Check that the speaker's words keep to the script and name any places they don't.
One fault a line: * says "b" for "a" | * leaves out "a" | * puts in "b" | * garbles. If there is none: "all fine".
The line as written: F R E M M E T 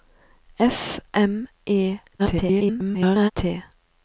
* leaves out "R E M"
* garbles